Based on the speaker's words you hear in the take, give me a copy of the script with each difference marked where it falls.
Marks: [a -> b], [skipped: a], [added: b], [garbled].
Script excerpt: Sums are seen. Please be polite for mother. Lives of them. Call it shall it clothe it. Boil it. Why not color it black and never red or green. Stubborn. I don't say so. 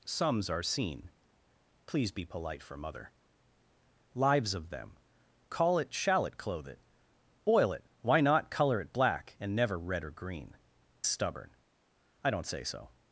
Sums are seen. Please be polite for mother. Lives of them. Call it shall it clothe it. Boil it. Why not color it black and never red or green. Stubborn. I don't say so.